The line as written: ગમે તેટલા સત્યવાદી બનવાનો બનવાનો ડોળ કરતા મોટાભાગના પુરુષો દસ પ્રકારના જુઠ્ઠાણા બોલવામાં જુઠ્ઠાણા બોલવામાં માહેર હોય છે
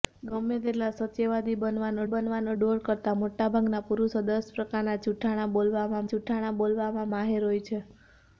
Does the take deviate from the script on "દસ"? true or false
false